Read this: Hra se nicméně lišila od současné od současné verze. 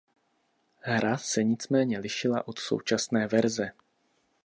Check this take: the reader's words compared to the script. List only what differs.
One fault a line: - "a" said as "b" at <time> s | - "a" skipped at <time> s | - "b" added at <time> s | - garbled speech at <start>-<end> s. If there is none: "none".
- "od současné" skipped at 3.3 s